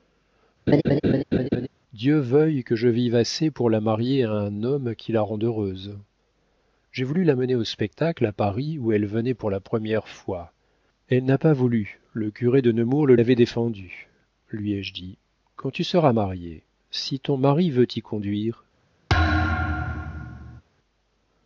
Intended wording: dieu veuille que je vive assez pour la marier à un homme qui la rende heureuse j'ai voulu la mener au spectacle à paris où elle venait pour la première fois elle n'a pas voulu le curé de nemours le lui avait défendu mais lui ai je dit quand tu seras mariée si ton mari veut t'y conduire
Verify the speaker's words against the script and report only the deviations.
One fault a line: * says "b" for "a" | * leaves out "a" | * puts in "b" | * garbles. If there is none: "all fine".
* leaves out "lui"
* leaves out "mais"